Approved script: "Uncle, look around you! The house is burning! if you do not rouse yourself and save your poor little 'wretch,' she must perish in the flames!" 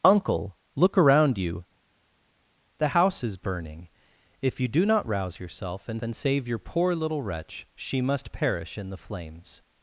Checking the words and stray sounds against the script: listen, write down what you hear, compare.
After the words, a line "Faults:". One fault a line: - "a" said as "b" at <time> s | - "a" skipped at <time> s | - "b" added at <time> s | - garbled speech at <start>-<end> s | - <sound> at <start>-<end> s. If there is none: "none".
"Uncle, look around you! The house is burning! if you do not rouse yourself and and save your poor little 'wretch,' she must perish in the flames!"
Faults:
- "and" added at 6.0 s